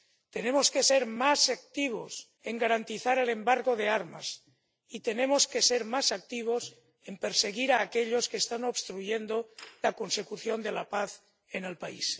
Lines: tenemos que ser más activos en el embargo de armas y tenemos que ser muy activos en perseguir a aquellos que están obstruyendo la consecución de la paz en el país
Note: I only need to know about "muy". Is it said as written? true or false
false